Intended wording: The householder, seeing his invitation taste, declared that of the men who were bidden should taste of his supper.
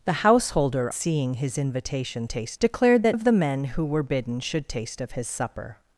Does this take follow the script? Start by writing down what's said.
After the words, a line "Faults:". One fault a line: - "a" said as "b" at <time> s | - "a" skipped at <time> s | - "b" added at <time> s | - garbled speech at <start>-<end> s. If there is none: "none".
The householder, seeing his invitation taste, declared that of the men who were bidden should taste of his supper.
Faults:
none